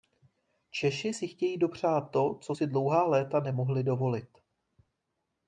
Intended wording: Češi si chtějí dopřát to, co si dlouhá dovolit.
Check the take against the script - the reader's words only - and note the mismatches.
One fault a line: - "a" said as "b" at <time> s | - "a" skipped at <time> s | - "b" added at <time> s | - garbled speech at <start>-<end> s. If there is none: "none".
- "léta nemohli" added at 3.1 s